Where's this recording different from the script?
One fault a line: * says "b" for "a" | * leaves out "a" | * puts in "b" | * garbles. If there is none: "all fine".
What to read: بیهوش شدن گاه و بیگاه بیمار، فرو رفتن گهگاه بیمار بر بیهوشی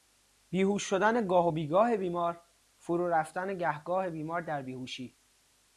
* says "در" for "بر"